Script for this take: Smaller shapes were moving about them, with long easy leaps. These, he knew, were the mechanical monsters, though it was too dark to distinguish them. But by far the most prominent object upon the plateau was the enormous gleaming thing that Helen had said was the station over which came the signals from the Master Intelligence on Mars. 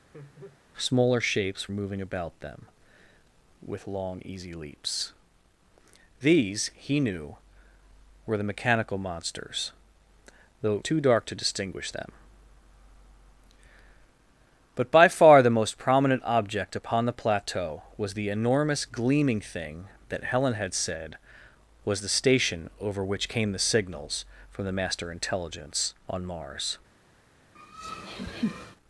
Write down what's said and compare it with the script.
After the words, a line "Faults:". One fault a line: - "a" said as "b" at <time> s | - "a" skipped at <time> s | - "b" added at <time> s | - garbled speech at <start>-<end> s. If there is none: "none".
Smaller shapes moving about them, with long easy leaps. These, he knew, were the mechanical monsters, though it too dark to distinguish them. But by far the most prominent object upon the plateau was the enormous gleaming thing that Helen had said was the station over which came the signals from the Master Intelligence on Mars.
Faults:
- "were" skipped at 1.7 s
- "was" skipped at 10.8 s